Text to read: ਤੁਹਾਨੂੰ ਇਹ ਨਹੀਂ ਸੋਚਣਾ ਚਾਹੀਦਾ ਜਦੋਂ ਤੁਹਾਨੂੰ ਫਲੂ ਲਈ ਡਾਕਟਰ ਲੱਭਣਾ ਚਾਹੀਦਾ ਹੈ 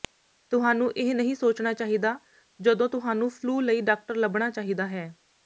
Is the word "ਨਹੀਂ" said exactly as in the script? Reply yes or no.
yes